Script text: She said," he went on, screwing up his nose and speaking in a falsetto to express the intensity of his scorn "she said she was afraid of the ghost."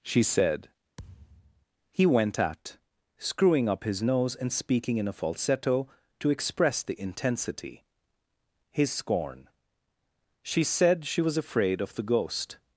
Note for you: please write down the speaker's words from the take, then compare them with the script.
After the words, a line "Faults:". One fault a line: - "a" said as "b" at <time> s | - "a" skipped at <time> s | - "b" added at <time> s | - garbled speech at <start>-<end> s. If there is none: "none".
She said," he went at, screwing up his nose and speaking in a falsetto to express the intensity his scorn "she said she was afraid of the ghost."
Faults:
- "on" said as "at" at 2.4 s
- "of" skipped at 7.8 s